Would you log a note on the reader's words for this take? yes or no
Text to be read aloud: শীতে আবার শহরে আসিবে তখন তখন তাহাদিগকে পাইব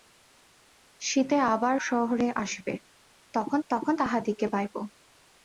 no